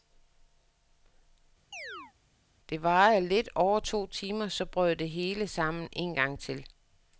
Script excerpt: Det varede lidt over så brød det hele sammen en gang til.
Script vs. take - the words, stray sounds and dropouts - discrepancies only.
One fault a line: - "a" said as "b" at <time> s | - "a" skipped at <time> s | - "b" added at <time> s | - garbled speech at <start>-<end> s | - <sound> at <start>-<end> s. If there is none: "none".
- chirp at 1.7-2.1 s
- "to timer" added at 3.8 s